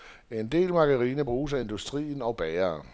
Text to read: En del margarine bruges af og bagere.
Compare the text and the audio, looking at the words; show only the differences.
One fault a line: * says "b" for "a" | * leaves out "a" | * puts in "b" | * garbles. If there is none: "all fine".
* puts in "industrien"